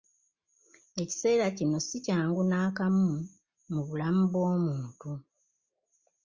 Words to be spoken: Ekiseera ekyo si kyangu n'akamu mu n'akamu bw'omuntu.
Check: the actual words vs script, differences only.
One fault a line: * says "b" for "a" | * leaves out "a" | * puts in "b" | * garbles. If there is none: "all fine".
* says "kino" for "ekyo"
* says "bulamu" for "n'akamu"